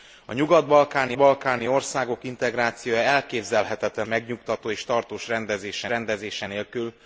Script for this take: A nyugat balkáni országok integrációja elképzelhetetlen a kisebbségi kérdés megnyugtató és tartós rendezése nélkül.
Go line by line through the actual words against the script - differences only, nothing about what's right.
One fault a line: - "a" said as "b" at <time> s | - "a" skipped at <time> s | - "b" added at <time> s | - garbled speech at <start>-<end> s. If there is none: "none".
- "balkáni" added at 1.2 s
- "a kisebbségi kérdés" skipped at 4.1 s
- "rendezése" added at 5.9 s